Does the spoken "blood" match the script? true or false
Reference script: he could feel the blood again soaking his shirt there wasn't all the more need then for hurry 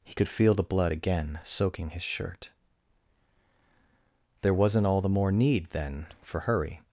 true